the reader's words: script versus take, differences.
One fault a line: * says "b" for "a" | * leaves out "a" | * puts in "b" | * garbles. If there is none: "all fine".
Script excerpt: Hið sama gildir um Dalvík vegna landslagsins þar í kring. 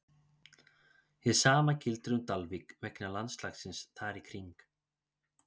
all fine